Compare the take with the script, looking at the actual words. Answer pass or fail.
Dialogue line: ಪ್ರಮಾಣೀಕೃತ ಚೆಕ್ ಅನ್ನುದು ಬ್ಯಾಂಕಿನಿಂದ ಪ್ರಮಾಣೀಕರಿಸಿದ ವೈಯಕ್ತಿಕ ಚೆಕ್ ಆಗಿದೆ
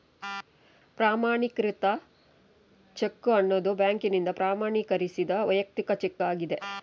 pass